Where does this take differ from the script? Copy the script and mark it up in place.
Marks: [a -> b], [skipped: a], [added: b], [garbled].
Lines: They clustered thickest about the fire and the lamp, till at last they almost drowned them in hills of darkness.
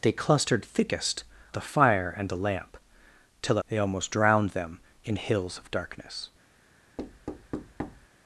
They clustered thickest [skipped: about] the fire and the lamp, till [skipped: at last] they almost drowned them in hills of darkness.